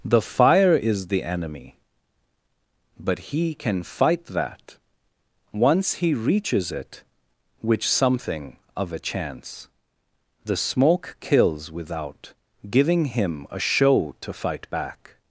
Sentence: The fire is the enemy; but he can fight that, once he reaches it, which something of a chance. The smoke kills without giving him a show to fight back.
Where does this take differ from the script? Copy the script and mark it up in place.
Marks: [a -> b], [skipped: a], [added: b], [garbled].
The fire is the enemy; but he can fight that, once he reaches it, which something of a chance. The smoke kills without giving him a show to fight back.